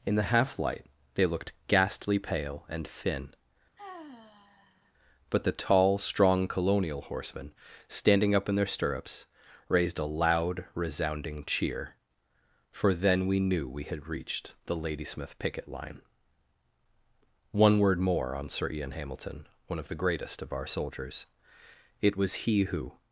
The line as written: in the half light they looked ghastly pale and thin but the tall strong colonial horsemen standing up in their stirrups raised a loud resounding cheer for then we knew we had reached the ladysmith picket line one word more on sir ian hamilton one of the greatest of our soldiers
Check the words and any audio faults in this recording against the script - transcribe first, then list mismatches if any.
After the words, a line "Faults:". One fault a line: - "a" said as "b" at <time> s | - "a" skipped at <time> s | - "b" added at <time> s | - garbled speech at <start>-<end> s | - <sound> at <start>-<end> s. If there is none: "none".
in the half light they looked ghastly pale and thin but the tall strong colonial horsemen standing up in their stirrups raised a loud resounding cheer for then we knew we had reached the ladysmith picket line one word more on sir ian hamilton one of the greatest of our soldiers it was he who
Faults:
- sigh at 3.8-4.9 s
- "it was he who" added at 22.0 s